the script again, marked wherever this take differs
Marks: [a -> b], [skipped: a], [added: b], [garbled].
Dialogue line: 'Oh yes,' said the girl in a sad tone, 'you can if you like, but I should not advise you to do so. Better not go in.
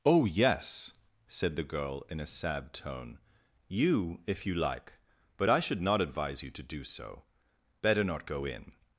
'Oh yes,' said the girl in a sad tone, 'you [skipped: can] if you like, but I should not advise you to do so. Better not go in.